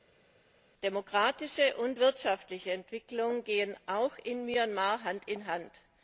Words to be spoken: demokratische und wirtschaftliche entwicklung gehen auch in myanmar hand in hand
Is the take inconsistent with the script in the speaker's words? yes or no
no